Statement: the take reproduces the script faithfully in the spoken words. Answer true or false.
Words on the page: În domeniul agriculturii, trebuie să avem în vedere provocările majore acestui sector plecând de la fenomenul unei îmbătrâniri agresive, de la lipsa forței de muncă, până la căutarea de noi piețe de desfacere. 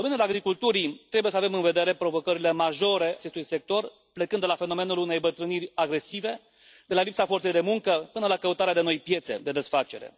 true